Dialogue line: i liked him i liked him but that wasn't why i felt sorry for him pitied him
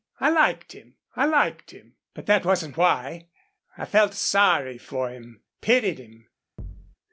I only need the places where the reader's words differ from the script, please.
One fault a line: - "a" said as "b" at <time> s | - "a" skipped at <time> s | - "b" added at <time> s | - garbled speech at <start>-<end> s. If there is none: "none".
none